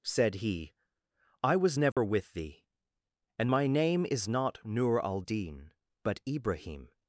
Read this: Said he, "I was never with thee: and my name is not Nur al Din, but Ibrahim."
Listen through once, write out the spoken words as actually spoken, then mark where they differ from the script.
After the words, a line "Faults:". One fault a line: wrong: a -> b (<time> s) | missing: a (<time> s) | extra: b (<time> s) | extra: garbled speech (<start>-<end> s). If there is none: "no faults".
Said he, "I was never with thee: and my name is not Nur al Din, but Ibrahim."
Faults:
no faults